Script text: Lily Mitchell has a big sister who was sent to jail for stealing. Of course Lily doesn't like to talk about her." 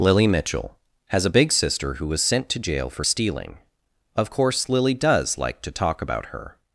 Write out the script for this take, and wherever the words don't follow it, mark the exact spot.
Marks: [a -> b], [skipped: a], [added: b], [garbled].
Lily Mitchell has a big sister who was sent to jail for stealing. Of course Lily [doesn't -> does] like to talk about her."